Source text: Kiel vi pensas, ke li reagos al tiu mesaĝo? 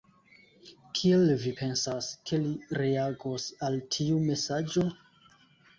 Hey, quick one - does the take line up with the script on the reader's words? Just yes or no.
yes